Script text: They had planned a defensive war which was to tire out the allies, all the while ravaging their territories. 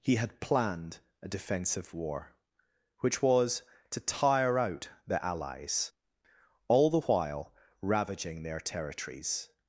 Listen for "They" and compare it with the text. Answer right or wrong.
wrong